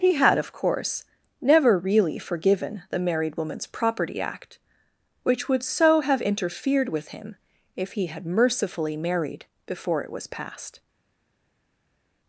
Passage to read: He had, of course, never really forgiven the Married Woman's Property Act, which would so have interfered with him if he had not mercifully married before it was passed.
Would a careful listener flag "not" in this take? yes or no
yes